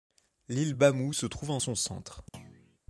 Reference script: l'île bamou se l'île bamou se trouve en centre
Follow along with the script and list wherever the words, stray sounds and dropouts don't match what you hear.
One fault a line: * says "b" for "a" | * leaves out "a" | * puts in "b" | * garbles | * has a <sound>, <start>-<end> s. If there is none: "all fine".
* leaves out "l'île bamou se"
* puts in "son"
* has a thud, 2.3-2.8 s